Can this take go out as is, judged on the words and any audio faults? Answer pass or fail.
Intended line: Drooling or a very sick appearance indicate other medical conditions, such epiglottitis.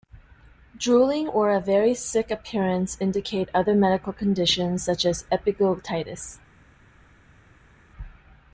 fail